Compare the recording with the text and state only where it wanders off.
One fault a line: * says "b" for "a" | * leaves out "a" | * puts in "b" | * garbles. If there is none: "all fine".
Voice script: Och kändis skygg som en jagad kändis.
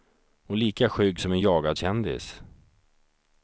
* says "lika" for "kändis"